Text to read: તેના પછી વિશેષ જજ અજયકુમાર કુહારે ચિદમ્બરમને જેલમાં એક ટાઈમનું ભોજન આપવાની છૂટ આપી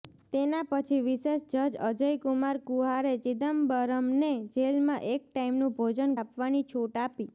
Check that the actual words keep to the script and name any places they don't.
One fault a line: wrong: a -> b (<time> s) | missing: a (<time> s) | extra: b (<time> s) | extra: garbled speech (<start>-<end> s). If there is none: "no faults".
no faults